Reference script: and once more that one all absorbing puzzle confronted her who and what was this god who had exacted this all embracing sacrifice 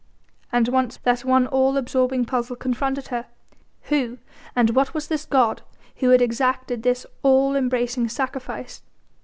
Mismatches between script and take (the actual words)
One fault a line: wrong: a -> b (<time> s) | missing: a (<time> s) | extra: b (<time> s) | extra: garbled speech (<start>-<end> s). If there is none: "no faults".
missing: more (1.0 s)